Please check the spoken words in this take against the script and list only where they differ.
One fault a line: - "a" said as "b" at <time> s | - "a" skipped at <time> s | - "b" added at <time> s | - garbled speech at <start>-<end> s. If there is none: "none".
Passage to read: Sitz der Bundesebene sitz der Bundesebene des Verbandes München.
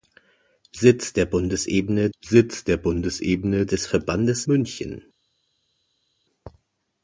none